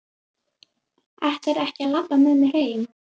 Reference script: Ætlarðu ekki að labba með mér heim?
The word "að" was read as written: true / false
true